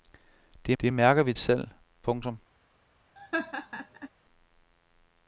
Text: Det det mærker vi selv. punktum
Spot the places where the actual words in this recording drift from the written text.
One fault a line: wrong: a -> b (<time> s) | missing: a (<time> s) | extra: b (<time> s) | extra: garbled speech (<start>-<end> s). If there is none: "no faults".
no faults